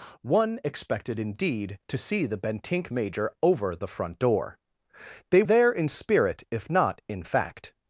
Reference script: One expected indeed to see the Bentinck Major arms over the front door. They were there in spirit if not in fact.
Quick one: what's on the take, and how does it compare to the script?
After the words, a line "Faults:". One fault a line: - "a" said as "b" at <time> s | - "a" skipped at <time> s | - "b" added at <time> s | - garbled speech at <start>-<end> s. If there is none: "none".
One expected indeed to see the Bentinck Major over the front door. They there in spirit if not in fact.
Faults:
- "arms" skipped at 3.3 s
- "were" skipped at 5.4 s